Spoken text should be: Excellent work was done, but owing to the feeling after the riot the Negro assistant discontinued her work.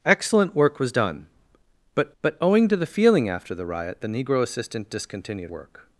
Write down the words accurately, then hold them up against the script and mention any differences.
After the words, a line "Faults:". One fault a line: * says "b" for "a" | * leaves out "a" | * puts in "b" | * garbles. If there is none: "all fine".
Excellent work was done, but but owing to the feeling after the riot the Negro assistant discontinued work.
Faults:
* puts in "but"
* leaves out "her"